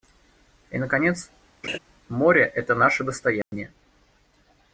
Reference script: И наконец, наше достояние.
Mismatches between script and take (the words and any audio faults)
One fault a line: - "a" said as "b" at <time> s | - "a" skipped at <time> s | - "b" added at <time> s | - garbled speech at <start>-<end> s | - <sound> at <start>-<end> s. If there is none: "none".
- laugh at 1.6-1.8 s
- "море это" added at 2.1 s
- dropout at 3.4-3.5 s